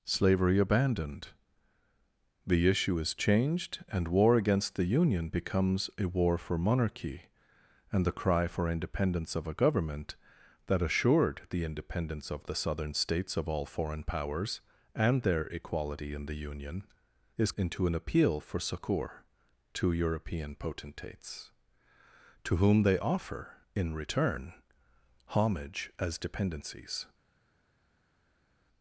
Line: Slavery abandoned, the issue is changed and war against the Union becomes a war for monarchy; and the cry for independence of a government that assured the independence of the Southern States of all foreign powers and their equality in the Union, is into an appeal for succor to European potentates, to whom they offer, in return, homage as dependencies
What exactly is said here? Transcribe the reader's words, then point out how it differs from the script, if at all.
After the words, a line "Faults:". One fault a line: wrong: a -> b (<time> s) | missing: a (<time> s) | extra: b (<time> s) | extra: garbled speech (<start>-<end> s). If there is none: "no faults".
Slavery abandoned, the issue is changed and war against the Union becomes a war for monarchy; and the cry for independence of a government that assured the independence of the Southern States of all foreign powers and their equality in the Union, is into an appeal for succor to European potentates, to whom they offer, in return, homage as dependencies
Faults:
no faults